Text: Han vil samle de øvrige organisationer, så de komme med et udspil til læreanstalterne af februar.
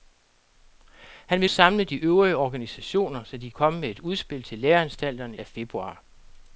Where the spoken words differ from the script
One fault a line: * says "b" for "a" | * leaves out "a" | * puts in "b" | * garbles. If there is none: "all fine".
all fine